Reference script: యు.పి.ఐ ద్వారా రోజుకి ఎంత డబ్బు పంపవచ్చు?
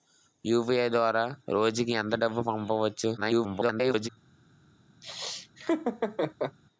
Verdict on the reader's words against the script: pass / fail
fail